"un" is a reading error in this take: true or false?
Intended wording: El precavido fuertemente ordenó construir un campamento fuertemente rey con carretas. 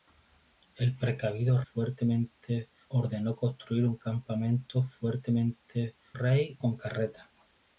false